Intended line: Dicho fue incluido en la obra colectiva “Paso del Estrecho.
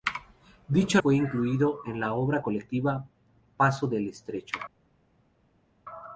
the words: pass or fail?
pass